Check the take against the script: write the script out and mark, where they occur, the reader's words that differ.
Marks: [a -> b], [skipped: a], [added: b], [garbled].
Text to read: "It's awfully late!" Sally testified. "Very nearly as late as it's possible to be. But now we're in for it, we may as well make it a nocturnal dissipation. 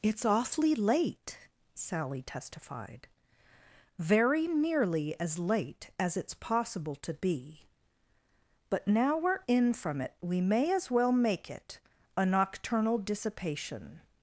"It's awfully late!" Sally testified. "Very nearly as late as it's possible to be. But now we're in [for -> from] it, we may as well make it a nocturnal dissipation.